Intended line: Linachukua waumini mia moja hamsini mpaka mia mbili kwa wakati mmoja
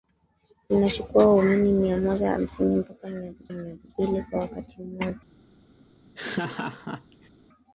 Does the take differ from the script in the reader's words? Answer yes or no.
yes